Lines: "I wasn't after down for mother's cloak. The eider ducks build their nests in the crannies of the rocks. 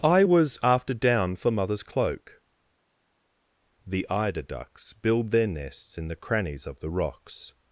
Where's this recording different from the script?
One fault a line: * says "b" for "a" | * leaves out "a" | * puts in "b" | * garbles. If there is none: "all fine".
* says "was" for "wasn't"